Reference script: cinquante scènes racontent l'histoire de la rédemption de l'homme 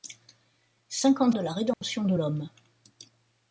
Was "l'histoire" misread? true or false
true